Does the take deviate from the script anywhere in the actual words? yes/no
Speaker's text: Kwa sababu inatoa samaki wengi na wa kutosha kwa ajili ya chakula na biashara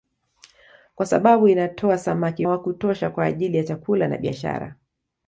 yes